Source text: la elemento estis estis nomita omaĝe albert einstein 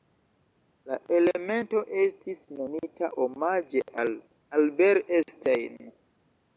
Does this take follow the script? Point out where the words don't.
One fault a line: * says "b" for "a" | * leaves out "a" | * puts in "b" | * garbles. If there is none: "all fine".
* leaves out "estis"
* puts in "al"